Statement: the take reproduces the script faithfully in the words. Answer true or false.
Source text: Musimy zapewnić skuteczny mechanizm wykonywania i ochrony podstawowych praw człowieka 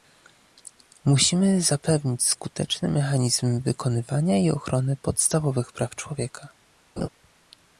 true